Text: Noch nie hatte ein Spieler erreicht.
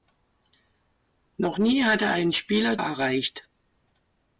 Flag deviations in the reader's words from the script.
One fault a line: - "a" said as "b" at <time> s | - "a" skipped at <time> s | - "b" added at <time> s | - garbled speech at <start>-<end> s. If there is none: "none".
none